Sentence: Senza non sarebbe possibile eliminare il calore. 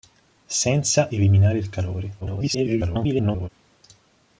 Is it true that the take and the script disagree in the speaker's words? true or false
true